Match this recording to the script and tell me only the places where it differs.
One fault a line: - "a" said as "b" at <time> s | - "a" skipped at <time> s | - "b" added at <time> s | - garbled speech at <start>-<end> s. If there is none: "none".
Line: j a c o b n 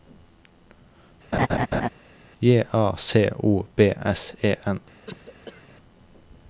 - "s e" added at 4.0 s